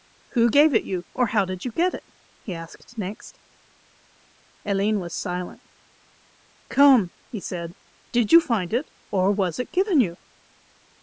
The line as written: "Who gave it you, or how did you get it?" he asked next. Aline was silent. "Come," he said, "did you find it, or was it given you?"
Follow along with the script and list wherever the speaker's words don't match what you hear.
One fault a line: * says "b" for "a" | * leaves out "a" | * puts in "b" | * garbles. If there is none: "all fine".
all fine